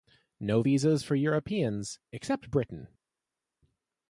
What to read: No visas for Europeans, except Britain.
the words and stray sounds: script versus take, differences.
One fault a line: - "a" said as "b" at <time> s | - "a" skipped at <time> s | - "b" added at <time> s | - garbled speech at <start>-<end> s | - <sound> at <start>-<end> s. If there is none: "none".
none